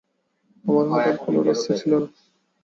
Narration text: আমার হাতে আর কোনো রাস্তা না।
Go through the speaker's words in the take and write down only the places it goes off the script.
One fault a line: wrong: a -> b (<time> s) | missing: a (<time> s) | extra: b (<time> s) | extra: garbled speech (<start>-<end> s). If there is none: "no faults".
extra: ছিল (1.8 s)